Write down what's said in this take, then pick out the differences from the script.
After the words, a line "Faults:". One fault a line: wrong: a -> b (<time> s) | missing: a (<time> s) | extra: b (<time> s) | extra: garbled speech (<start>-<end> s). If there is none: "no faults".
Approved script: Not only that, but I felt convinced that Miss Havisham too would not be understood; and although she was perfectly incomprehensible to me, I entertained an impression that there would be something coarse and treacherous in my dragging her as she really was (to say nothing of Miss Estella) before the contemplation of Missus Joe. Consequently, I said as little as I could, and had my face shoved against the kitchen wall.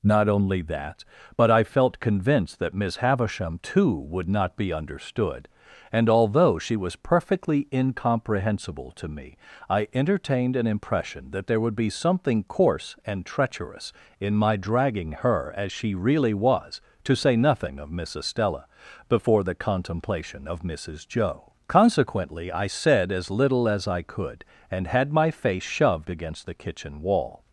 Not only that, but I felt convinced that Miss Havisham too would not be understood; and although she was perfectly incomprehensible to me, I entertained an impression that there would be something coarse and treacherous in my dragging her as she really was (to say nothing of Miss Estella) before the contemplation of Missus Joe. Consequently, I said as little as I could, and had my face shoved against the kitchen wall.
Faults:
no faults